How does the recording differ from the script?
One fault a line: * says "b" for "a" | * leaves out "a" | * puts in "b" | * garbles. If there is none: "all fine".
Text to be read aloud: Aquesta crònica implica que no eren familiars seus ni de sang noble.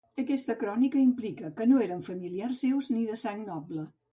all fine